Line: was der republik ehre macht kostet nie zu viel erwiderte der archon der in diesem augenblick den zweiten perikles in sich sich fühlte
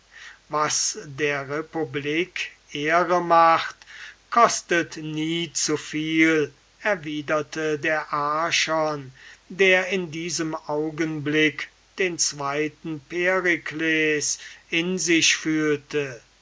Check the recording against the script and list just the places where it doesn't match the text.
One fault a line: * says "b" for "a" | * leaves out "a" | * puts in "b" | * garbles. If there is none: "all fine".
* leaves out "sich"